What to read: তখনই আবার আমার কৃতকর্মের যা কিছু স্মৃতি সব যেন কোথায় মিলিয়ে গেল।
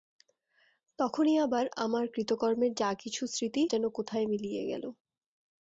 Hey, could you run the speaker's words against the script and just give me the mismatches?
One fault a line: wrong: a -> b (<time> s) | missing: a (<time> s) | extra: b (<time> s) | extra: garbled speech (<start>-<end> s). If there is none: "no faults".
missing: সব (3.6 s)